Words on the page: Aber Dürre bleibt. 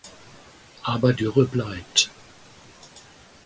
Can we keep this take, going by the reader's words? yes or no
yes